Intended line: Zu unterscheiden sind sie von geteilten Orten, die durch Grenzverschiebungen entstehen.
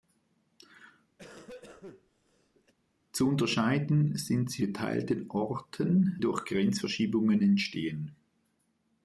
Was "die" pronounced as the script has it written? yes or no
no